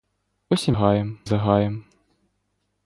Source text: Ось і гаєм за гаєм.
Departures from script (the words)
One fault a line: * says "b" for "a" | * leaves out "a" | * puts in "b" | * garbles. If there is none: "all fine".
all fine